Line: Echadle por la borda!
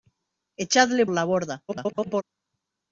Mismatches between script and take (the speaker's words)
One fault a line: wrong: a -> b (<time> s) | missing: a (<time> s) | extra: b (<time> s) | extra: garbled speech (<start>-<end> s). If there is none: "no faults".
missing: por (1.1 s)
extra: garbled speech (1.7-2.2 s)